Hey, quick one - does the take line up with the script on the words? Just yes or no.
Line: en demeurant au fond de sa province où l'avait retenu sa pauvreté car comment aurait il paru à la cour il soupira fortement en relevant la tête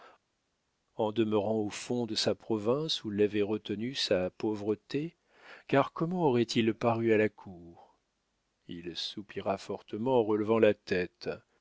yes